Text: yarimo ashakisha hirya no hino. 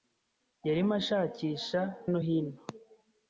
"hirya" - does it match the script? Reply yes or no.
no